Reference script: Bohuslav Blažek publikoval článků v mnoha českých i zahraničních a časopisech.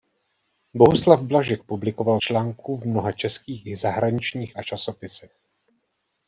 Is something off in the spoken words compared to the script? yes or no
no